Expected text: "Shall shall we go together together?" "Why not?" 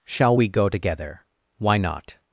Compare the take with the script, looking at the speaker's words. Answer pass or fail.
fail